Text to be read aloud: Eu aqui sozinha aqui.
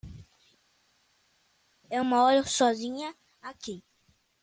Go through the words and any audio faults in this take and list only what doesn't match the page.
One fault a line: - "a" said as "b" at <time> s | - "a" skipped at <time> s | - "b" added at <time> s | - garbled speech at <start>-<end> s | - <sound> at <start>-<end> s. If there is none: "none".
- "aqui" said as "moro" at 2.0 s